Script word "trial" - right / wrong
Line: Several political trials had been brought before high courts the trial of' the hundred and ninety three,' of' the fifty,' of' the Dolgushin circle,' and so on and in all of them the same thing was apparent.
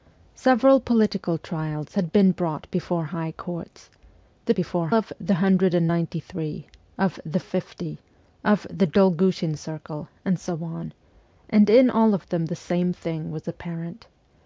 wrong